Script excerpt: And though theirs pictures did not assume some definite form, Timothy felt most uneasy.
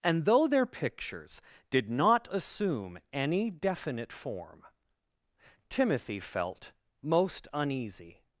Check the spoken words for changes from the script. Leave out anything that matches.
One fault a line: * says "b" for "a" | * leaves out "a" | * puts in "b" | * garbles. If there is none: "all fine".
* says "their" for "theirs"
* says "any" for "some"